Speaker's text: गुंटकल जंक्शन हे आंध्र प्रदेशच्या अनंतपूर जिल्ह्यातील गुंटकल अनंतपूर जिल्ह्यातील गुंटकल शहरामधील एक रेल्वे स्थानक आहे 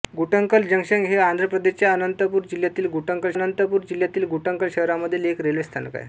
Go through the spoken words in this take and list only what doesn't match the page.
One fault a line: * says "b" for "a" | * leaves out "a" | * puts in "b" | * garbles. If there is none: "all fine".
all fine